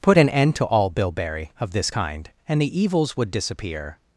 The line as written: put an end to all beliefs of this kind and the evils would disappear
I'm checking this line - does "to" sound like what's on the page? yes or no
yes